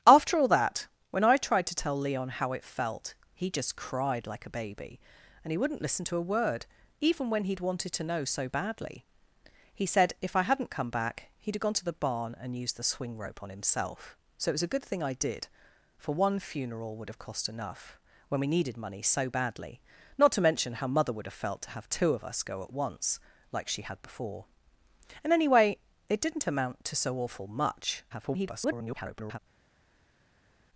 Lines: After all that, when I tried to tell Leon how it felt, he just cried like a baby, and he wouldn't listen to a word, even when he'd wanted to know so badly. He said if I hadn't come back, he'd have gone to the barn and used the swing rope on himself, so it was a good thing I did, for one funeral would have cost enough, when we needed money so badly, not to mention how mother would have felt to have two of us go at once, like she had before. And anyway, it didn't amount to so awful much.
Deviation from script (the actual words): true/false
true